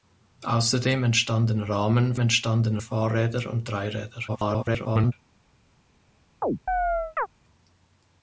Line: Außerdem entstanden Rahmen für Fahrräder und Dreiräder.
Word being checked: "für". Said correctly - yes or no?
no